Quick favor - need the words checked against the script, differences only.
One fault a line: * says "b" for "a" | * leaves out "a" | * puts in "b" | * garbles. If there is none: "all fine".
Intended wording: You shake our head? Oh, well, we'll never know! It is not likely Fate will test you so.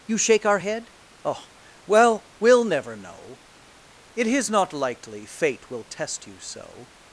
all fine